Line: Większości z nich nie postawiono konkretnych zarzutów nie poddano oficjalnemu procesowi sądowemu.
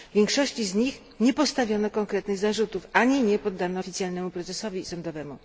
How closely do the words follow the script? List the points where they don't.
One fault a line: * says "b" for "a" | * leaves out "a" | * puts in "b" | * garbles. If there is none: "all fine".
* puts in "ani"